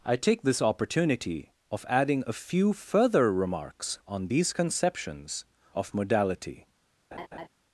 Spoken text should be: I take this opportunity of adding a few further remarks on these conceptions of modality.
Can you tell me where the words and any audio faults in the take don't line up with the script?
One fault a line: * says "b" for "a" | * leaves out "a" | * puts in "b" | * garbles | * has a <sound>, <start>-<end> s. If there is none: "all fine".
* has a laugh, 7.1-7.5 s